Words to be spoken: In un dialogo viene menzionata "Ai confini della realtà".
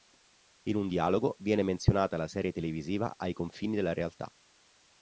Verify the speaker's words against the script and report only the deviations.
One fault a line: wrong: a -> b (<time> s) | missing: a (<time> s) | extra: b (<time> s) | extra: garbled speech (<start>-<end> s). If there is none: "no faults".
extra: la serie televisiva (2.2 s)